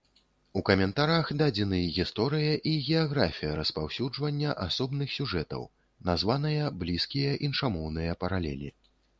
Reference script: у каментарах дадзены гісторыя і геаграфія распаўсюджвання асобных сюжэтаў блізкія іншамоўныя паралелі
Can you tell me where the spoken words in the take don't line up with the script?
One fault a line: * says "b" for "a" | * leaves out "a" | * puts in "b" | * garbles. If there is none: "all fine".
* puts in "названыя"